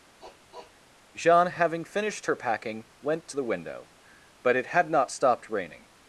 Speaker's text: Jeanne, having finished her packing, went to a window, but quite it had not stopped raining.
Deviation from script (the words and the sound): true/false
true